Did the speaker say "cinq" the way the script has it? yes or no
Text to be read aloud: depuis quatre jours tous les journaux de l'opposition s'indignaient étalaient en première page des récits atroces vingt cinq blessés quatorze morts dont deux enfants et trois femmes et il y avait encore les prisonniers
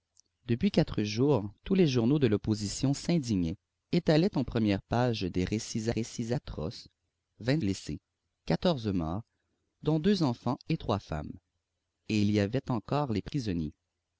no